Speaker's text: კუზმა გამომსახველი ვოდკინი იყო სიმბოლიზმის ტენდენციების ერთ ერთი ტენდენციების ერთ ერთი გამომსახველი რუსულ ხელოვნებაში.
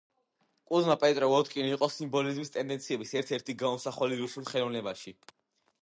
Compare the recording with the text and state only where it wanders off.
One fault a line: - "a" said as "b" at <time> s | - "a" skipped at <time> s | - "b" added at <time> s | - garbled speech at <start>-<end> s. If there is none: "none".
- "გამომსახველი" said as "პეტროვ" at 1.0 s
- "ტენდენციების ერთ ერთი" skipped at 3.6 s